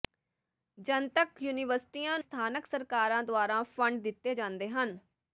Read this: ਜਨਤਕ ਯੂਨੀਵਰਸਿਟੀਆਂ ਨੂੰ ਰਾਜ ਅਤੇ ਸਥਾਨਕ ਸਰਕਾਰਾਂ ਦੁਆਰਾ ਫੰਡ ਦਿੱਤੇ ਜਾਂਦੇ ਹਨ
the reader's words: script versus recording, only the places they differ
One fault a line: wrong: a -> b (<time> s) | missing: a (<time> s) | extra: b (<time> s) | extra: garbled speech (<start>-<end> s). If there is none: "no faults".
missing: ਨੂੰ ਰਾਜ ਅਤੇ (2.2 s)